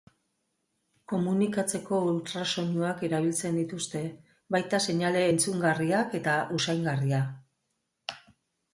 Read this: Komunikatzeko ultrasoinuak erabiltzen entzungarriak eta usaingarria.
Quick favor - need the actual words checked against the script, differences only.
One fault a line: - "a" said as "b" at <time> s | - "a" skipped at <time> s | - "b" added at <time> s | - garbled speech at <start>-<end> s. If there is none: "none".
- "dituzte baita seinale" added at 3.6 s